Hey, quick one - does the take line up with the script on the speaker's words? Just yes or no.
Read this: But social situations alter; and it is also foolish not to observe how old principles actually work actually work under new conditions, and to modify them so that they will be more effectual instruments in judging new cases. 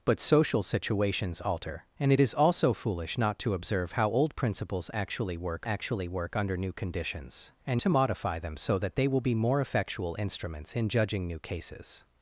yes